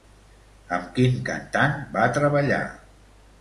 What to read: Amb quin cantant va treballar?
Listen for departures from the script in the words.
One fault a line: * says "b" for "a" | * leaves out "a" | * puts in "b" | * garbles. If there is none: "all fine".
all fine